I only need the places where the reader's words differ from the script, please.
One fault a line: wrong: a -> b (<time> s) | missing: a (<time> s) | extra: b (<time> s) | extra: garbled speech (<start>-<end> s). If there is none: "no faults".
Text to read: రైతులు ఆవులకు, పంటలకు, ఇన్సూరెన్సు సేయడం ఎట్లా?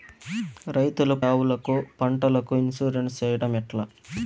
no faults